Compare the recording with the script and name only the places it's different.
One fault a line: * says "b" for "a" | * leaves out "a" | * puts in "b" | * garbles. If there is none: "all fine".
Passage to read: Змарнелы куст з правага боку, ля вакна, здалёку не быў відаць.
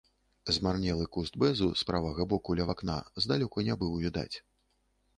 * puts in "бэзу"